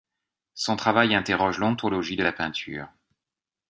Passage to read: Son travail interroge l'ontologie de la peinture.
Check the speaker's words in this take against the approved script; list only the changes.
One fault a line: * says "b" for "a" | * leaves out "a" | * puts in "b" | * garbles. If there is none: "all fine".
all fine